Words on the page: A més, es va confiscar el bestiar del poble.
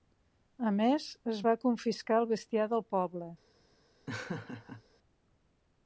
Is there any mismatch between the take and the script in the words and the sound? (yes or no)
yes